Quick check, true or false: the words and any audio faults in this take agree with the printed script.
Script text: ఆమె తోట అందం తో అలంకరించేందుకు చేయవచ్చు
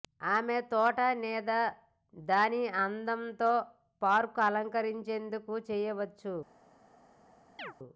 false